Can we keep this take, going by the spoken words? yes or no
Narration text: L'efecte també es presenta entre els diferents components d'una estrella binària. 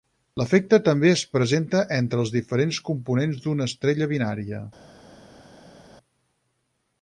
yes